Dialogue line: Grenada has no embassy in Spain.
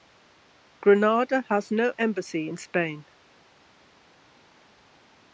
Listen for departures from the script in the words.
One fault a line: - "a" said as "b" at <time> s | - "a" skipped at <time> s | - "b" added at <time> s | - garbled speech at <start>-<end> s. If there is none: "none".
none